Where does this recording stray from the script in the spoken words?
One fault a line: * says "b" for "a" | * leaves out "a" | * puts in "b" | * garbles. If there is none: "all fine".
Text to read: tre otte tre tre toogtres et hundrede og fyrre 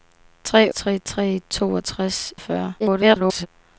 * leaves out "otte"
* leaves out "et hundrede"
* garbles